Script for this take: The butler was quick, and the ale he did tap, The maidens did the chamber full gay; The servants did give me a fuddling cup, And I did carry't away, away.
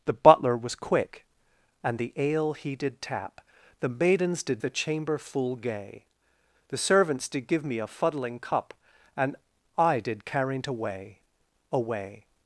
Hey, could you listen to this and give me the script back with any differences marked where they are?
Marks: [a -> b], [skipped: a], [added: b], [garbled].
The butler was quick, and the ale he did tap, The maidens did the chamber full gay; The servants did give me a fuddling cup, And I did carry't away, away.